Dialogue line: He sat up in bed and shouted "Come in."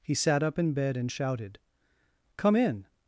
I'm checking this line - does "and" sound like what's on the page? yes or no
yes